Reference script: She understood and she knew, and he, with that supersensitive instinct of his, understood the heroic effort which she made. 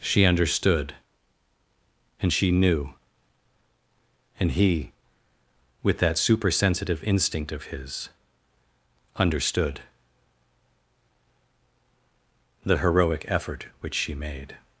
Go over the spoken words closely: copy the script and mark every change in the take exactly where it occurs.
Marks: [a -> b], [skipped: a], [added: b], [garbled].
She understood and she knew, and he, with that supersensitive instinct of his, understood the heroic effort which she made.